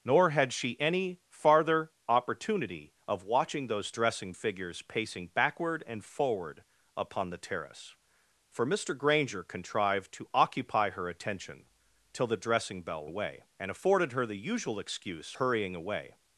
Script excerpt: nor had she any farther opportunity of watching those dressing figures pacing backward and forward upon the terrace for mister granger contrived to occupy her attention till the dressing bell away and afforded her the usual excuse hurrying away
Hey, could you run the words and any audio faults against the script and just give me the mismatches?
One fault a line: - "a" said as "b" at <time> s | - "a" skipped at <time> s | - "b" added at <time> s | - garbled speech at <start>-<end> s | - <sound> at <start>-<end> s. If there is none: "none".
none